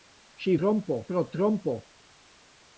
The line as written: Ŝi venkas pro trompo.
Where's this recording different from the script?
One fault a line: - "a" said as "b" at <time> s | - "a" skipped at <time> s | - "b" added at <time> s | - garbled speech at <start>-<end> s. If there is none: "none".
- "venkas" said as "trompo" at 0.6 s